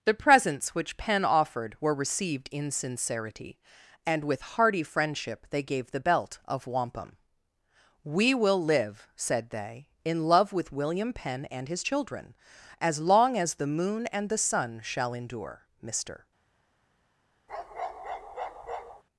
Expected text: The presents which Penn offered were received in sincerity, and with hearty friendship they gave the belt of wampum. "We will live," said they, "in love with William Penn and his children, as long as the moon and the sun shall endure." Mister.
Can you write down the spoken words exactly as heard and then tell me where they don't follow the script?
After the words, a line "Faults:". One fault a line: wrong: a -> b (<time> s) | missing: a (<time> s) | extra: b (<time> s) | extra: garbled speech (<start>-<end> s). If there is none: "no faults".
The presents which Penn offered were received in sincerity, and with hearty friendship they gave the belt of wampum. "We will live," said they, "in love with William Penn and his children, as long as the moon and the sun shall endure." Mister.
Faults:
no faults